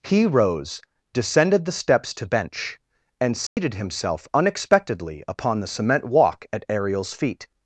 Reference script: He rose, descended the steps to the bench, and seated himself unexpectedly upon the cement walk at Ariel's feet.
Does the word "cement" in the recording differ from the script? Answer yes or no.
no